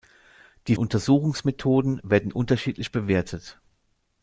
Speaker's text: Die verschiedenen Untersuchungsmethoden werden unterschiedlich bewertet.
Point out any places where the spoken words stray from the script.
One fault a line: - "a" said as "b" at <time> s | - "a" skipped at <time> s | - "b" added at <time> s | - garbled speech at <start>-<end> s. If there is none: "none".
- "verschiedenen" skipped at 0.8 s